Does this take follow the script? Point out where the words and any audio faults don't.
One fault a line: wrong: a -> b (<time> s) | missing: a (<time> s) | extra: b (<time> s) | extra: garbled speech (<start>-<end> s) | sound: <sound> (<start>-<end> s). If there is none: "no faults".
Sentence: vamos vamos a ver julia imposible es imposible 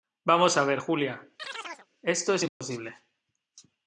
missing: vamos (0.6 s)
sound: chirp (1.4-1.9 s)
wrong: imposible -> esto (2.0 s)
sound: dropout (2.5-2.6 s)